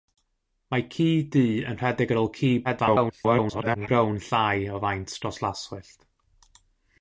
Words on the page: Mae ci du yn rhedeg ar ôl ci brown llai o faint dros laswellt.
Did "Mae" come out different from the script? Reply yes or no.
no